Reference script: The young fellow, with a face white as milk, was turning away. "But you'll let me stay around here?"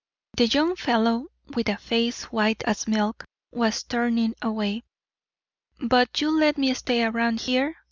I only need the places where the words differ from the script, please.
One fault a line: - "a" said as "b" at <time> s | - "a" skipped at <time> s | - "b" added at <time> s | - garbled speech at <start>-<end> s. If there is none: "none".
none